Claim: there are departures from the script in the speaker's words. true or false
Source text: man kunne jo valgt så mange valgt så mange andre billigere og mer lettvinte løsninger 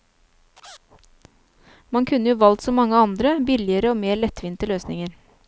true